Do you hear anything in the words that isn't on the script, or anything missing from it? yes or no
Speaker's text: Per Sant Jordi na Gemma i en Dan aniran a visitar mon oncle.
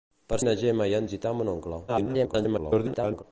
yes